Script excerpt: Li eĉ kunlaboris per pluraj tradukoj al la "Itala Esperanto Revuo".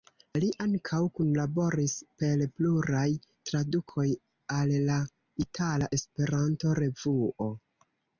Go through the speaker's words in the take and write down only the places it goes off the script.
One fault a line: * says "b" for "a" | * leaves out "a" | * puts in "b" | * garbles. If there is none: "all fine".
* says "ankaŭ" for "eĉ"